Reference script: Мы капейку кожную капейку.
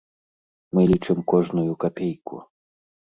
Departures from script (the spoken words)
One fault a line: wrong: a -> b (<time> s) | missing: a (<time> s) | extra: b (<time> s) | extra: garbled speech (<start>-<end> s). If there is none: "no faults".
wrong: капейку -> лічым (0.9 s)